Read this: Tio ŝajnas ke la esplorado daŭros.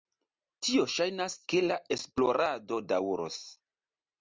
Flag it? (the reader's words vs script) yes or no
no